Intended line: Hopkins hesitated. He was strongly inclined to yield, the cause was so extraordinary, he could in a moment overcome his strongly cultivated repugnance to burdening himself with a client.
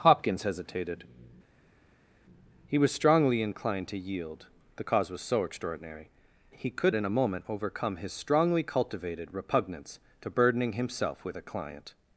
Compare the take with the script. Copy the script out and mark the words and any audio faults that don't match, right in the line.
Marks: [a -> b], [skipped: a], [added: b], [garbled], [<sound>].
Hopkins hesitated. He was strongly inclined to yield, the cause was so extraordinary, he could in a moment overcome his strongly cultivated repugnance to burdening himself with a client.